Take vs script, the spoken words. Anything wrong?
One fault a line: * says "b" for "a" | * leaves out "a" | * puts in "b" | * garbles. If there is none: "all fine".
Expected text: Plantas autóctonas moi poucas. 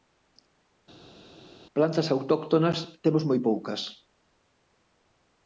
* puts in "temos"